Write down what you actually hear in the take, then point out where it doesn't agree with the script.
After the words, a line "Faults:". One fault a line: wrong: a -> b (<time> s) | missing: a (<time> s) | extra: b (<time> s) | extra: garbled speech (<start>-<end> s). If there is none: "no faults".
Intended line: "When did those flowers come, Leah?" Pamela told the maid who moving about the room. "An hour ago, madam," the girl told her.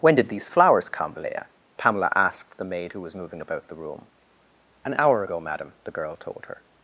"When did these flowers come, Leah?" Pamela asked the maid who was moving about the room. "An hour ago, madam," the girl told her.
Faults:
wrong: those -> these (0.3 s)
wrong: told -> asked (2.1 s)
extra: was (3.0 s)